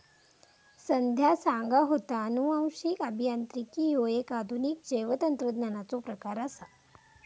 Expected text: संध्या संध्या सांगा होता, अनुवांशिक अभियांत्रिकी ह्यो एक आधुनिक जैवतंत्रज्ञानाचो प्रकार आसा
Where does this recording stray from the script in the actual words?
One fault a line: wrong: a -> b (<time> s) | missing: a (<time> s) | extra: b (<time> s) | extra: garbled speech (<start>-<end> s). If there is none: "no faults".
missing: संध्या (1.4 s)